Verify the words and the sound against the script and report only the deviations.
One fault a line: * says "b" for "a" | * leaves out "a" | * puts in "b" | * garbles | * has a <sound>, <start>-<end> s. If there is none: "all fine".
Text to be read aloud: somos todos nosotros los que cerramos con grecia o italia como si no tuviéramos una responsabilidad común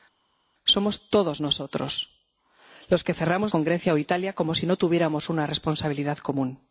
all fine